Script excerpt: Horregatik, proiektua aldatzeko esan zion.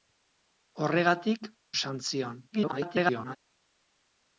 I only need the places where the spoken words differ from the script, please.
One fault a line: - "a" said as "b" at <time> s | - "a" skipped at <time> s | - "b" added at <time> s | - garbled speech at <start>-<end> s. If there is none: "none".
- "proiektua aldatzeko" skipped at 1.5 s
- garbled speech at 2.5-3.4 s